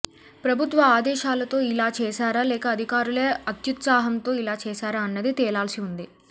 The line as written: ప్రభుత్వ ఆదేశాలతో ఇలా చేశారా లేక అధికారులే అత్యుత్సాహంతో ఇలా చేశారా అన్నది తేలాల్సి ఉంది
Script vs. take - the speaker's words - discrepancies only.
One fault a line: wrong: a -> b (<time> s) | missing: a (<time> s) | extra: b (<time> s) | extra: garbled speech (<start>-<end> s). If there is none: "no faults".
no faults